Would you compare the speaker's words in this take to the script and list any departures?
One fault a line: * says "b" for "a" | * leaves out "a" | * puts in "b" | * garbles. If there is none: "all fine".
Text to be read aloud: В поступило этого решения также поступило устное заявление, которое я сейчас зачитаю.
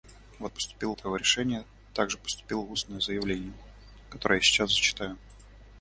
all fine